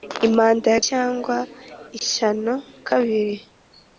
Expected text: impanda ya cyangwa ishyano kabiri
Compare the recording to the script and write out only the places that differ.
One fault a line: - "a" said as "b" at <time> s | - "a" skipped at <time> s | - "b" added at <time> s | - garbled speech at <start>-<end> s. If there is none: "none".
none